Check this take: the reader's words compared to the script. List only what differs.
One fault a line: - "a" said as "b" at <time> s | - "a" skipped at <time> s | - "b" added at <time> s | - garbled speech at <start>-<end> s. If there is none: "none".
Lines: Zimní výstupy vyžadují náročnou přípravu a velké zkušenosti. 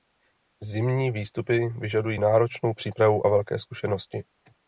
none